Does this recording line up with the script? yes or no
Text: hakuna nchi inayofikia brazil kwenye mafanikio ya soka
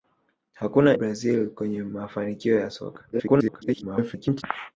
no